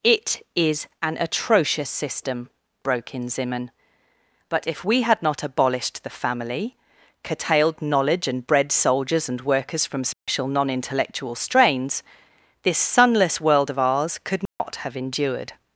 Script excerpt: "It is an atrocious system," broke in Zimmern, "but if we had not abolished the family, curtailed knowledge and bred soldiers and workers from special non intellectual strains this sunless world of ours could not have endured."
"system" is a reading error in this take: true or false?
false